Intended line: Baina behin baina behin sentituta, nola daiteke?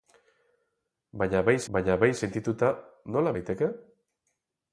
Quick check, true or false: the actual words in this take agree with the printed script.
true